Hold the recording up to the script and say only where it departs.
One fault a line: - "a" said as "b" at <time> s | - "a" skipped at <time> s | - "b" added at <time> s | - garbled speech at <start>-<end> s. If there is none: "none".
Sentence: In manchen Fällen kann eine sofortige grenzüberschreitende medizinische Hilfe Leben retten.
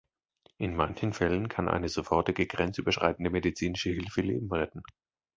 none